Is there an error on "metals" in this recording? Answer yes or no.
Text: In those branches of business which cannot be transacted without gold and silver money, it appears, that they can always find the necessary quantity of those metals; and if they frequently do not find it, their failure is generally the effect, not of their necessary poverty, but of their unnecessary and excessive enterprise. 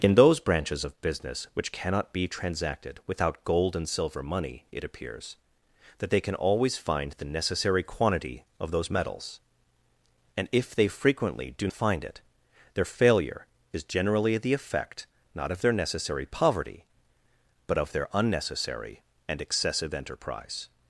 no